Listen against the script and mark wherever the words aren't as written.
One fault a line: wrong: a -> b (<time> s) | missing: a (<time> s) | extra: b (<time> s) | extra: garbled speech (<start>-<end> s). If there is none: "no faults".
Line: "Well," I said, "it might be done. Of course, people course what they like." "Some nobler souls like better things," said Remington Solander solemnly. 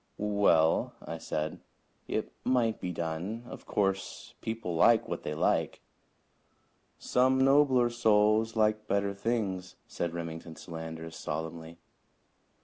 wrong: course -> like (4.7 s)